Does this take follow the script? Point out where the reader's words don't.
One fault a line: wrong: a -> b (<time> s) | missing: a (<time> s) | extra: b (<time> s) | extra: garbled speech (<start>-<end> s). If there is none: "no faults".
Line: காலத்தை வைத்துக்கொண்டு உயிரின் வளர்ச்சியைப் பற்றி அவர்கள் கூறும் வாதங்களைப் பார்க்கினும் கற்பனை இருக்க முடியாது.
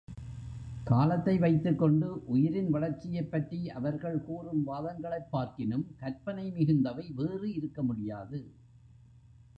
extra: மிகுந்தவை வேறு (6.5 s)